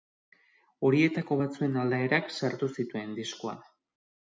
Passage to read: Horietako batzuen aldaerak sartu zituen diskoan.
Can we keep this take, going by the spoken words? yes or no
yes